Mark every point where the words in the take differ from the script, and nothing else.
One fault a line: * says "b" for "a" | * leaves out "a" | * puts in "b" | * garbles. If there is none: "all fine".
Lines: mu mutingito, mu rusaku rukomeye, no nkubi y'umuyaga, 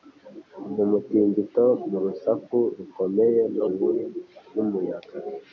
all fine